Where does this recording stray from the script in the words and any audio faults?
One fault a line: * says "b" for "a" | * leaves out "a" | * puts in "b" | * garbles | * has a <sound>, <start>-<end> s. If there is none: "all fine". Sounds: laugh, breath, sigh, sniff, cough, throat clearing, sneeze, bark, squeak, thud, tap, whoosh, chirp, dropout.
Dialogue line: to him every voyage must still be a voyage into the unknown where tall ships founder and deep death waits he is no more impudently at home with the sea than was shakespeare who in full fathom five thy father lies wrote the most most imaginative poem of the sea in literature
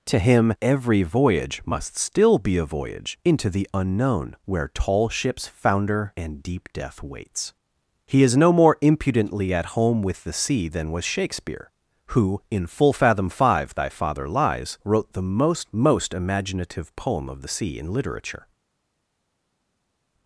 all fine